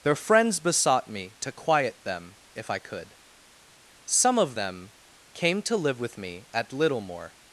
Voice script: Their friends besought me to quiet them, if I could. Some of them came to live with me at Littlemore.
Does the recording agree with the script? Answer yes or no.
yes